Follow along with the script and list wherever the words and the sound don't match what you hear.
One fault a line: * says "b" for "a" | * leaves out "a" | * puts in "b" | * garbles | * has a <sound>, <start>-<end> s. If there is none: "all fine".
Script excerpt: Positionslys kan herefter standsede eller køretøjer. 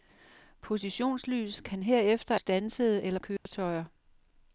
* has a dropout, 3.4-3.5 s